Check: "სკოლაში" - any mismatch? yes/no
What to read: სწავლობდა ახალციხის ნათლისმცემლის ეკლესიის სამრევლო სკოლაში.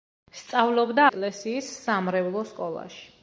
no